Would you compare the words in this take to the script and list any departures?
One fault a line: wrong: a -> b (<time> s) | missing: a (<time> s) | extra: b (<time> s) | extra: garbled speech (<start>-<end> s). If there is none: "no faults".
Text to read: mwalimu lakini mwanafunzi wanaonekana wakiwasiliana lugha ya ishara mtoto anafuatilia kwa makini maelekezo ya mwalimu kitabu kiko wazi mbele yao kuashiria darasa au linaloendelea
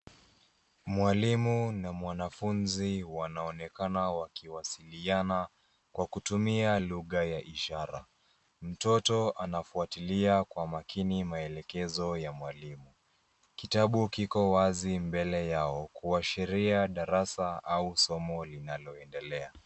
wrong: lakini -> na (1.7 s)
extra: kwa kutumia (5.9 s)
extra: somo (18.0 s)